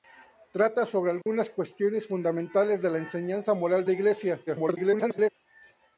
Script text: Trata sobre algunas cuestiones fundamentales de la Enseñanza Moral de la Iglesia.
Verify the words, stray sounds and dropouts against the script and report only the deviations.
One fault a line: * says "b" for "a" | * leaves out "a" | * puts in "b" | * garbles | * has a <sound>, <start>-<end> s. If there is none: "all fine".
* has a dropout, 1.2-1.3 s
* leaves out "de"
* garbles